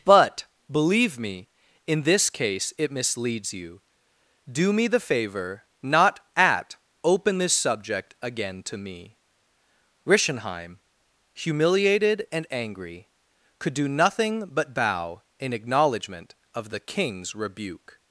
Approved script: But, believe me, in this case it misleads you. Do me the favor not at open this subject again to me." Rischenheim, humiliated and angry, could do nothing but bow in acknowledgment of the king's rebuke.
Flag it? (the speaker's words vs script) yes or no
no